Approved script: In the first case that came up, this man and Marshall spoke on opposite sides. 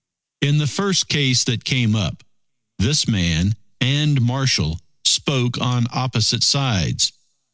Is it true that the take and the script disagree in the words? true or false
false